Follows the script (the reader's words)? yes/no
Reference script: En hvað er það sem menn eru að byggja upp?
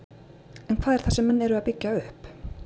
yes